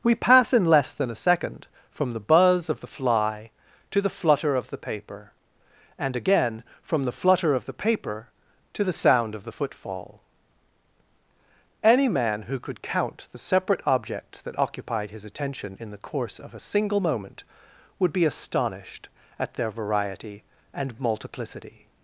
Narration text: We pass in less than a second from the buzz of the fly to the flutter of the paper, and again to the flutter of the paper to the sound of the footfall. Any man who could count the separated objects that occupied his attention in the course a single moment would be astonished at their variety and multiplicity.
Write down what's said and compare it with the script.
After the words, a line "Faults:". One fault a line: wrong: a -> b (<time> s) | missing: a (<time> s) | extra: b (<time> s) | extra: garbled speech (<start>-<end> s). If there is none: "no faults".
We pass in less than a second from the buzz of the fly to the flutter of the paper, and again from the flutter of the paper to the sound of the footfall. Any man who could count the separate objects that occupied his attention in the course of a single moment would be astonished at their variety and multiplicity.
Faults:
wrong: to -> from (6.8 s)
wrong: separated -> separate (13.4 s)
extra: of (16.4 s)